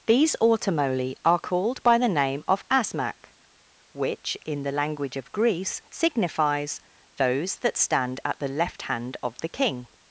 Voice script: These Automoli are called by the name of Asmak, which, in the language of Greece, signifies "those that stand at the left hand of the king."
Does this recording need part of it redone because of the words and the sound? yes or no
no